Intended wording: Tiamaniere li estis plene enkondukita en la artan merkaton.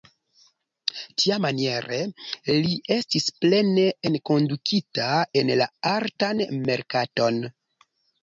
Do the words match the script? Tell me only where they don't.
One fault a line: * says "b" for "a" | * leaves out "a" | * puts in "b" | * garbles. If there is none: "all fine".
all fine